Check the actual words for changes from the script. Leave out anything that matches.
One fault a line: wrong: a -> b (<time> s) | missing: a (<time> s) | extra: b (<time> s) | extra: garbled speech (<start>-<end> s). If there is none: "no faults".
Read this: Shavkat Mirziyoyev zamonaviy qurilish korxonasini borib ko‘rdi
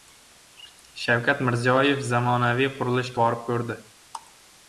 missing: korxonasini (3.1 s)